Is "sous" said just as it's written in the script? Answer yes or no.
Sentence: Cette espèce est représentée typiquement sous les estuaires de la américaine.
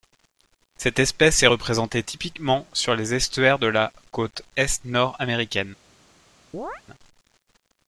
no